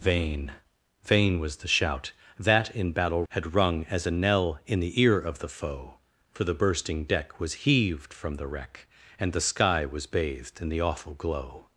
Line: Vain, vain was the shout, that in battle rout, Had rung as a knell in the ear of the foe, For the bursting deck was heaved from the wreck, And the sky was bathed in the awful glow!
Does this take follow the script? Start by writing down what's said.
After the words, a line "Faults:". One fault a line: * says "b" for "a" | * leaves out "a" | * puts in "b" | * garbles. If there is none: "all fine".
Vain, vain was the shout, that in battle Had rung as a knell in the ear of the foe, For the bursting deck was heaved from the wreck, And the sky was bathed in the awful glow!
Faults:
* leaves out "rout"